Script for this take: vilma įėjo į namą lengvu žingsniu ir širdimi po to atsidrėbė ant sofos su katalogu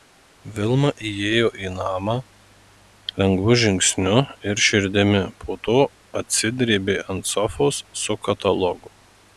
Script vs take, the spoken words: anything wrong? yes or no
no